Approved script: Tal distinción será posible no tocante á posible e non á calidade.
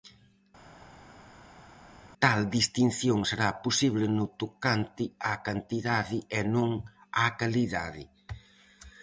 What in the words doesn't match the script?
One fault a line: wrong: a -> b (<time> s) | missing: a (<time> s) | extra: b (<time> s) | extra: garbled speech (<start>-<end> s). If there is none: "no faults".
wrong: posible -> cantidade (5.5 s)